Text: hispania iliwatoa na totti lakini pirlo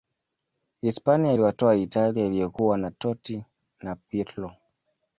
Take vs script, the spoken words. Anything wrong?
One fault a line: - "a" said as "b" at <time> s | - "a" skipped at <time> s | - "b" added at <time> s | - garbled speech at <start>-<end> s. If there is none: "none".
- "italia iliyokuwa" added at 1.7 s
- "lakini" said as "na" at 3.8 s